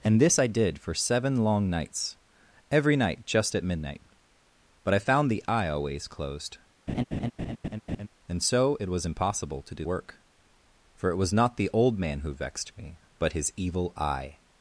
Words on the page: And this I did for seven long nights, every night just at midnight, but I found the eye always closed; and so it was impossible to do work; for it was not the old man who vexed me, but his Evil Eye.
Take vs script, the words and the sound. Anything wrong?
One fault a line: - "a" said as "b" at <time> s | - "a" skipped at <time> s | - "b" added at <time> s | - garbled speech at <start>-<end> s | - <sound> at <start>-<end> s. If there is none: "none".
- laugh at 6.9-8.1 s